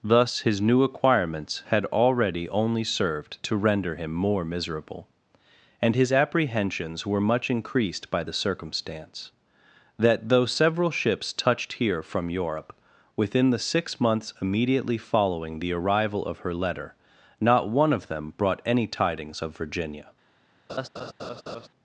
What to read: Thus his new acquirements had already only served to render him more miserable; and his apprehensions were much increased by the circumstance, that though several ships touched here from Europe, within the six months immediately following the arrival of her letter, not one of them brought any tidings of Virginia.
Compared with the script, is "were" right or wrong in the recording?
right